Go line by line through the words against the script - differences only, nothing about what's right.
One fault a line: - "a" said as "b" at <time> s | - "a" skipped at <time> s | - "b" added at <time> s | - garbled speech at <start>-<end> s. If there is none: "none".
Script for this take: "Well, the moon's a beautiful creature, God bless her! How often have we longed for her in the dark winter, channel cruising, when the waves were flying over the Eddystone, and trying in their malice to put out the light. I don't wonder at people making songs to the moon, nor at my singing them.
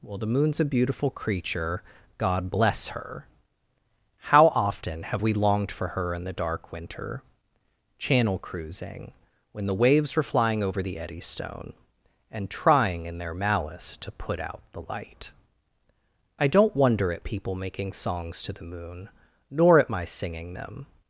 none